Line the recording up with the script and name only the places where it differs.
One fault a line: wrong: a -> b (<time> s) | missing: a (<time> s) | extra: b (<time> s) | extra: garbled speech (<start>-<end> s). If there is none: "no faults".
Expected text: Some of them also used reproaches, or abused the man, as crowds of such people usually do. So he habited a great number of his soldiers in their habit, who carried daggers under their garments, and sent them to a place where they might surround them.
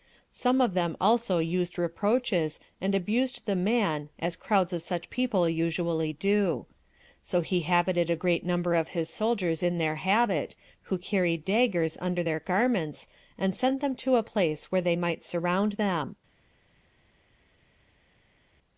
wrong: or -> and (2.8 s)